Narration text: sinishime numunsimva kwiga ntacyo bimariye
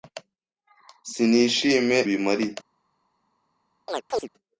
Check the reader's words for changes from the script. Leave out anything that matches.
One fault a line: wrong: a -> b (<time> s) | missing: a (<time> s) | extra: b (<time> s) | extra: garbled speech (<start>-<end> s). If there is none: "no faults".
missing: numunsimva kwiga ntacyo (2.0 s)